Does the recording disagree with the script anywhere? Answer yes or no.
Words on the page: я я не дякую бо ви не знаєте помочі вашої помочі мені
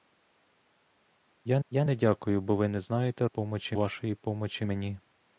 no